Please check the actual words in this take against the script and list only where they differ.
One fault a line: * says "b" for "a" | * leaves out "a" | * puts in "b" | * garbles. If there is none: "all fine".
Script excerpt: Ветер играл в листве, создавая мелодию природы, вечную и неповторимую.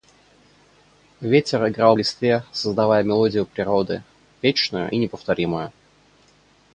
all fine